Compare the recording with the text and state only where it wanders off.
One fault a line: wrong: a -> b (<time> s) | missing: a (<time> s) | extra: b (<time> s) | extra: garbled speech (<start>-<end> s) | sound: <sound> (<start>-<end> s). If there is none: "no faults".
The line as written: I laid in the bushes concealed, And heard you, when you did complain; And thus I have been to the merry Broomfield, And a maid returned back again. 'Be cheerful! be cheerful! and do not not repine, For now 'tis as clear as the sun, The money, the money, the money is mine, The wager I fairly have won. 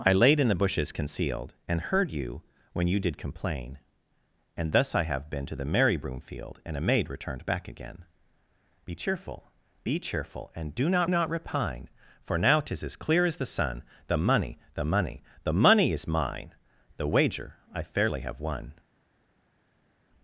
no faults